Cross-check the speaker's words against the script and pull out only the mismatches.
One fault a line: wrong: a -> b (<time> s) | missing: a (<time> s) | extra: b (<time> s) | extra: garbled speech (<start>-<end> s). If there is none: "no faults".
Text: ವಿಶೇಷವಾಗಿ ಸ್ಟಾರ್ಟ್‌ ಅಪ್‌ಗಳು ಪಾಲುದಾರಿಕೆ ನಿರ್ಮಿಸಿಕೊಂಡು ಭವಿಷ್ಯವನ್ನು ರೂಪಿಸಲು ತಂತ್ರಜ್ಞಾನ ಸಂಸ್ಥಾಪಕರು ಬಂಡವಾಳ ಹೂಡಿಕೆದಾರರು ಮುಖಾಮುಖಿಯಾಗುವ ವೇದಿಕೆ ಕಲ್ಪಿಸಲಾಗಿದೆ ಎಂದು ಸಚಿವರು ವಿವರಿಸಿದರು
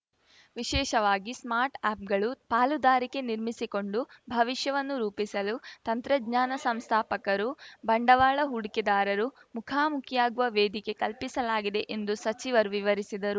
no faults